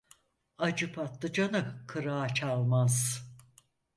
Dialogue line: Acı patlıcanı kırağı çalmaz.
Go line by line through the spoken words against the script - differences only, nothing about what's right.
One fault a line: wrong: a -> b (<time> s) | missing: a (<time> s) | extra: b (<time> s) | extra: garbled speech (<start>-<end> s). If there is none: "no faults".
no faults